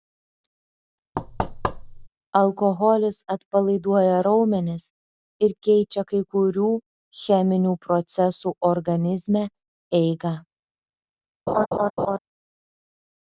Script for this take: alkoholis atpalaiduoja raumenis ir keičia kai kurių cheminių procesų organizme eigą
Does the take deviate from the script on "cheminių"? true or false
false